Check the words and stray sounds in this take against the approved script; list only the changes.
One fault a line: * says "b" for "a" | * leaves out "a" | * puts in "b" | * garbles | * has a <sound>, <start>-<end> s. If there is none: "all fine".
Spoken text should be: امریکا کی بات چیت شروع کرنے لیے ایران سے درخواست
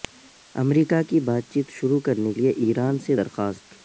all fine